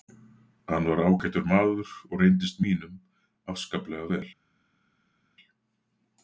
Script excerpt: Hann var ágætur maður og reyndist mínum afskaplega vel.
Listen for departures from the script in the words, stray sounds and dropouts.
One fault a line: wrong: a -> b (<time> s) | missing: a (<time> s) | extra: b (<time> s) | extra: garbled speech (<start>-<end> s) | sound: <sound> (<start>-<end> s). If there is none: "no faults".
no faults